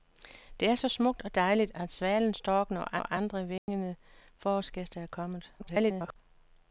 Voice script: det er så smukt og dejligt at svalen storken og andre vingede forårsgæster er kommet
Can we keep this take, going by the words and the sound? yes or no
no